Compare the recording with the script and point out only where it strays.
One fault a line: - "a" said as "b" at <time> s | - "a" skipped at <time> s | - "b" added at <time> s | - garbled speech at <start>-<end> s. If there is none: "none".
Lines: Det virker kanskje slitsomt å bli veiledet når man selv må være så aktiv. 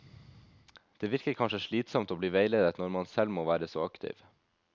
none